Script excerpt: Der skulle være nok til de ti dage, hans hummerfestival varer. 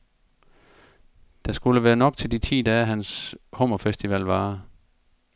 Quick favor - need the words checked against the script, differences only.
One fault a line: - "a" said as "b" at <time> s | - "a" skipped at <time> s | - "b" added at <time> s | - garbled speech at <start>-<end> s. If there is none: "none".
none